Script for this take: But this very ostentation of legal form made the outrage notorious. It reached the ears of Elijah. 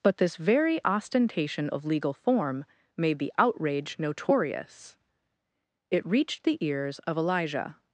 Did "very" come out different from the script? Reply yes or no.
no